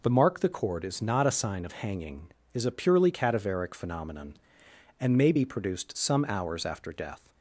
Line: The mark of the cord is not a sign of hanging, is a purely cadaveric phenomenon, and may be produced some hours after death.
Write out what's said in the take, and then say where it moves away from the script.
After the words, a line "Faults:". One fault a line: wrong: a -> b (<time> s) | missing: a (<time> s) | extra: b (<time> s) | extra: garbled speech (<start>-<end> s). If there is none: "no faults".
The mark the cord is not a sign of hanging, is a purely cadaveric phenomenon, and may be produced some hours after death.
Faults:
missing: of (0.4 s)